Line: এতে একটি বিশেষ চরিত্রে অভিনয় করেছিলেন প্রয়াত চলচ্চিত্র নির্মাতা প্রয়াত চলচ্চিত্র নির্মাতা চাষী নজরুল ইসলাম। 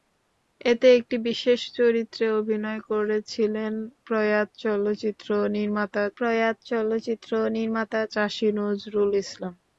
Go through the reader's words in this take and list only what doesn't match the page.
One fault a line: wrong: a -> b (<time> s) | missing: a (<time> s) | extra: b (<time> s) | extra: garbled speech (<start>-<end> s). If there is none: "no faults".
no faults